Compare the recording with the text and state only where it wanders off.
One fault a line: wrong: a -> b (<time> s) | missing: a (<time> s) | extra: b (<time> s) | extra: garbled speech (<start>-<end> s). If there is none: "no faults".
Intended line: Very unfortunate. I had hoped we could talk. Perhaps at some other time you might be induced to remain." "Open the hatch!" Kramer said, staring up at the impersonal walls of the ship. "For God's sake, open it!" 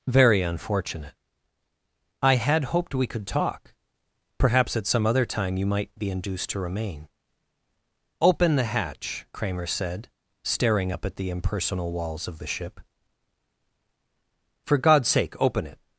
no faults